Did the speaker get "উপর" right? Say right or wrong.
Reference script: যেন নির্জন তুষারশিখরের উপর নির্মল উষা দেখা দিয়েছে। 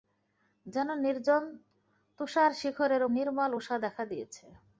wrong